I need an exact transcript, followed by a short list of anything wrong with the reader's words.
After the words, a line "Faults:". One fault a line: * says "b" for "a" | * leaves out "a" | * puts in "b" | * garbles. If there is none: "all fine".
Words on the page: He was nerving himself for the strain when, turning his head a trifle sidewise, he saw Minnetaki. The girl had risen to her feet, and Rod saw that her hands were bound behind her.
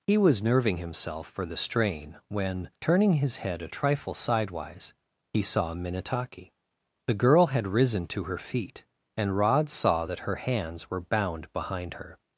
He was nerving himself for the strain when, turning his head a trifle sidewise, he saw Minnetaki. The girl had risen to her feet, and Rod saw that her hands were bound behind her.
Faults:
all fine